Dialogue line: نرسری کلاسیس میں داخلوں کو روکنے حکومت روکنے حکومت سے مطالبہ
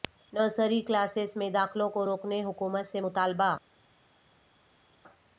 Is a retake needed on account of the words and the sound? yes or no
yes